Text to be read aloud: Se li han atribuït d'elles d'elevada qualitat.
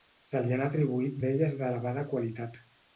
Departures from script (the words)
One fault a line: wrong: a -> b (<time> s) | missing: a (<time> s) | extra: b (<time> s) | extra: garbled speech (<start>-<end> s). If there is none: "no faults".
no faults